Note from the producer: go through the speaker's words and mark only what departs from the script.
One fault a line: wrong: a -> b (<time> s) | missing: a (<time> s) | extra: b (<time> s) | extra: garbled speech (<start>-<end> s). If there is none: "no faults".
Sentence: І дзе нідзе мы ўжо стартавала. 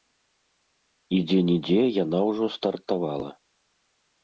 wrong: мы -> яна (2.0 s)